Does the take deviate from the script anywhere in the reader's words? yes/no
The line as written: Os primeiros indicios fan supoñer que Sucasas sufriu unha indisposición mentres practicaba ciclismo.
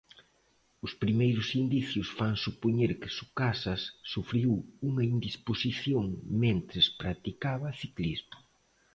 no